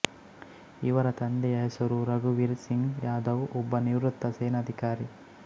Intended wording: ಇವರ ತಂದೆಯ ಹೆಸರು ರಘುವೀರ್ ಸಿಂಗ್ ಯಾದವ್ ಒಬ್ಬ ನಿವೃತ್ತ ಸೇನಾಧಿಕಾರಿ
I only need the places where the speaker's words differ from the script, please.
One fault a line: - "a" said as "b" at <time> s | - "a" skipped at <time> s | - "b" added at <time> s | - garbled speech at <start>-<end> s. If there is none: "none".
none